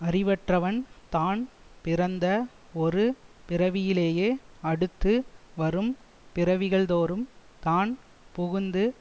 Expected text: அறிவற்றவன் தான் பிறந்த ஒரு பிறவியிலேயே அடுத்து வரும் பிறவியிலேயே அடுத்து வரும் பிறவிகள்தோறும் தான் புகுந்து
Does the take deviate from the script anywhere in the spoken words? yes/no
yes